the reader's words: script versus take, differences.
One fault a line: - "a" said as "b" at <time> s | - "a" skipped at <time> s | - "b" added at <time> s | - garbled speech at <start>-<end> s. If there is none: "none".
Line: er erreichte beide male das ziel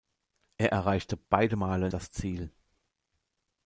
none